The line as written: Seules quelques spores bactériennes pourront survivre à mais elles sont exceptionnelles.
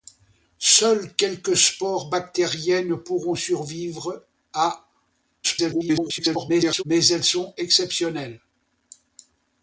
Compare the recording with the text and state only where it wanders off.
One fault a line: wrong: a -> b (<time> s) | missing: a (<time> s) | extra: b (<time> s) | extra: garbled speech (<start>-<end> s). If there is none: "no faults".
extra: garbled speech (5.4-6.8 s)